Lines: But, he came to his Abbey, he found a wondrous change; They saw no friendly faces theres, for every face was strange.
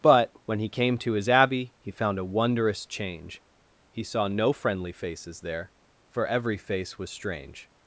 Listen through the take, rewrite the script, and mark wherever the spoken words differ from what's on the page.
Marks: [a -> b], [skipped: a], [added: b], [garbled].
But, [added: when] he came to his Abbey, he found a wondrous change; [They -> He] saw no friendly faces [theres, -> there] for every face was strange.